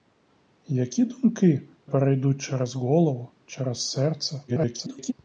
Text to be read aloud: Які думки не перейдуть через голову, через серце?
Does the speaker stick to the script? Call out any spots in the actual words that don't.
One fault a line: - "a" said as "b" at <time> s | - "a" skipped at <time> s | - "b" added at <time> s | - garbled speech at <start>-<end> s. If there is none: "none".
- "не" skipped at 1.6 s
- garbled speech at 4.5-5.1 s